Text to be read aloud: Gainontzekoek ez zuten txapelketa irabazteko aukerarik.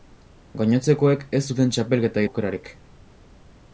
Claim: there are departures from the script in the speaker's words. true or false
true